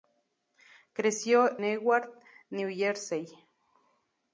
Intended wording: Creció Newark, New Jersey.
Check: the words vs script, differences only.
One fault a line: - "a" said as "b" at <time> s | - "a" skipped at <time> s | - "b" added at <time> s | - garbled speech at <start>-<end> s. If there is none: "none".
none